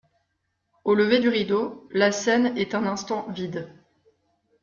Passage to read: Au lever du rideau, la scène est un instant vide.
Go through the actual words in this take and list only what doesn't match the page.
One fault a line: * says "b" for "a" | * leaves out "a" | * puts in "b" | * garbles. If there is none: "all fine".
all fine